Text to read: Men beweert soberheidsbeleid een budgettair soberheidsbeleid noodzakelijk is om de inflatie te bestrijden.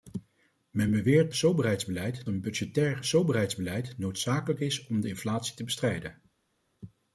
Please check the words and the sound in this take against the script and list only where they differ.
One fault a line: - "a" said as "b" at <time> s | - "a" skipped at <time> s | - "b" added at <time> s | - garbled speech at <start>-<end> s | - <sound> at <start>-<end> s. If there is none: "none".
none